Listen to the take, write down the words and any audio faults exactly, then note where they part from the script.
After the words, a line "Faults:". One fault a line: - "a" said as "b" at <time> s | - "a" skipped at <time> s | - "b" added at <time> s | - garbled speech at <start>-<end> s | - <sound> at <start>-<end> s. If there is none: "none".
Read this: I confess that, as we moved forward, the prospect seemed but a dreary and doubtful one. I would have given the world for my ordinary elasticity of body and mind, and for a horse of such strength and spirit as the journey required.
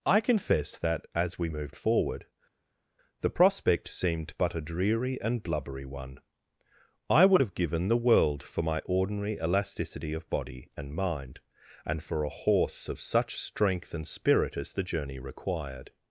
I confess that, as we moved forward, the prospect seemed but a dreary and blubbery one. I would have given the world for my ordinary elasticity of body and mind, and for a horse of such strength and spirit as the journey required.
Faults:
- "doubtful" said as "blubbery" at 5.4 s